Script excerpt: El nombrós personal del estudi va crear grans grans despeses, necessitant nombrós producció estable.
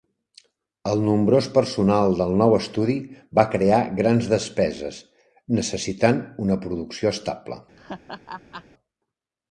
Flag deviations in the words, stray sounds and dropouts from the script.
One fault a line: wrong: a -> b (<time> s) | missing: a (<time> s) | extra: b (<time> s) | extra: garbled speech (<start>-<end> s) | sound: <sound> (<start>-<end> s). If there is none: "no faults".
extra: nou (2.4 s)
missing: grans (4.3 s)
wrong: nombrós -> una (6.5 s)
sound: laugh (7.8-8.6 s)